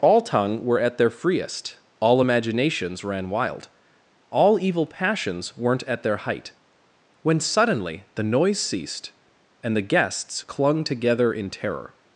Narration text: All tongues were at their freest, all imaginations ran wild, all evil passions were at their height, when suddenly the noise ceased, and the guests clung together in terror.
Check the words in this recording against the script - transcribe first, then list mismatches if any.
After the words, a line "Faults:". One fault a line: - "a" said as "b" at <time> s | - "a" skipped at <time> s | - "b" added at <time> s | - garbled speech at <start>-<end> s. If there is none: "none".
All tongue were at their freest, all imaginations ran wild, all evil passions weren't at their height, when suddenly the noise ceased, and the guests clung together in terror.
Faults:
- "tongues" said as "tongue" at 0.2 s
- "were" said as "weren't" at 5.6 s